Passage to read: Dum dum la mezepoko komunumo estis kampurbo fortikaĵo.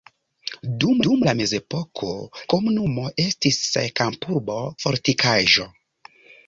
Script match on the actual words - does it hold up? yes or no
yes